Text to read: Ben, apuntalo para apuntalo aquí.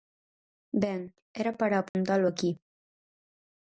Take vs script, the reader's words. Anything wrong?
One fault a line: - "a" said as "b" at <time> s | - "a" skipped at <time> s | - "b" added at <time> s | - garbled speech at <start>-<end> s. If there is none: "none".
- "apuntalo" said as "era" at 1.4 s